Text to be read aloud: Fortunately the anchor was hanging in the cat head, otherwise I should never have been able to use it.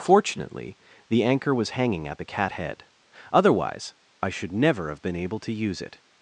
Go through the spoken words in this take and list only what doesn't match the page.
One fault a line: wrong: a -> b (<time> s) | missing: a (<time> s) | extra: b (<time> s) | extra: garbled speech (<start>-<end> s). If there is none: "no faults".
wrong: in -> at (2.1 s)